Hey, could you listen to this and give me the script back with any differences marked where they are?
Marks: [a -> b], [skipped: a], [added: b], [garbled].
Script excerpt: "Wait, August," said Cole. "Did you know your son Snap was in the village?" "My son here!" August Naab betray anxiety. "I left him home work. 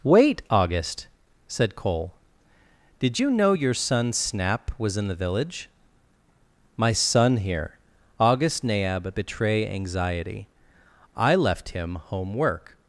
"Wait, August," said Cole. "Did you know your son Snap was in the village?" "My son here!" August Naab betray anxiety. "I left him home work.